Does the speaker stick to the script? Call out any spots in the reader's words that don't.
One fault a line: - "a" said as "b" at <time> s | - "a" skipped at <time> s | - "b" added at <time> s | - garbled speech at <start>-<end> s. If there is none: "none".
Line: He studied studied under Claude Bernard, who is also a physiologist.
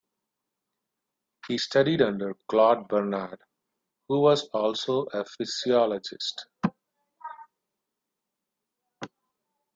- "studied" skipped at 2.0 s
- "is" said as "was" at 4.2 s